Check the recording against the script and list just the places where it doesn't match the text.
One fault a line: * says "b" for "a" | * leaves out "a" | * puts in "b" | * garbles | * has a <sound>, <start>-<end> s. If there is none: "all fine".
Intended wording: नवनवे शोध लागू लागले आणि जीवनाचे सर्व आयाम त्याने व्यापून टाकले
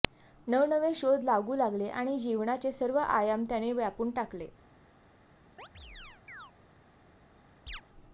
* has a chirp, 5.6-6.5 s
* has a chirp, 7.7-7.8 s